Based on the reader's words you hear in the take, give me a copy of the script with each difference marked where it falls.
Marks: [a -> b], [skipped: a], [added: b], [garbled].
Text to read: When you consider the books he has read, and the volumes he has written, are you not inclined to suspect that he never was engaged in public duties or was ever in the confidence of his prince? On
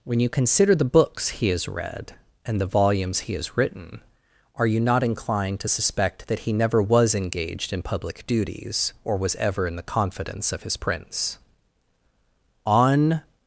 When you consider the books he has read, and the volumes he has written, are you not inclined to suspect that he never was engaged in public duties or was ever in the confidence of his prince? On